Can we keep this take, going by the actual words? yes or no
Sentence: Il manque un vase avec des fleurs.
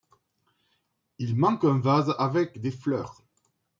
yes